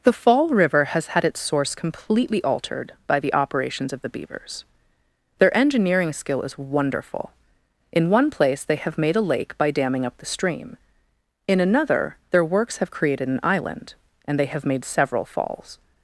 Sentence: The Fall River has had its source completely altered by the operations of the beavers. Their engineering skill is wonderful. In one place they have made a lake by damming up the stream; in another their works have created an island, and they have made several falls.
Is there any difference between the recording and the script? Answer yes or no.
no